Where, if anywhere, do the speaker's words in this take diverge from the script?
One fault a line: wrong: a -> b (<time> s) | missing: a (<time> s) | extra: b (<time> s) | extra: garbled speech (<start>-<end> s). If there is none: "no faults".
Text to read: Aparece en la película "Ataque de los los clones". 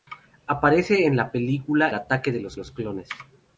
no faults